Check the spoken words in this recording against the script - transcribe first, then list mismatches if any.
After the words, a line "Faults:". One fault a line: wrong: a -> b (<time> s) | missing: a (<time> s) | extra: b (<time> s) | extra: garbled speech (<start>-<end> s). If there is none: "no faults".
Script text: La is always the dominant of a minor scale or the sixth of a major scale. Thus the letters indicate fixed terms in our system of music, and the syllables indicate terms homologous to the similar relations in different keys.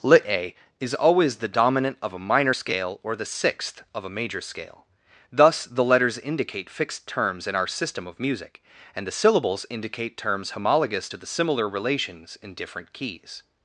Lit a is always the dominant of a minor scale or the sixth of a major scale. Thus the letters indicate fixed terms in our system of music, and the syllables indicate terms homologous to the similar relations in different keys.
Faults:
wrong: La -> Lit a (0.0 s)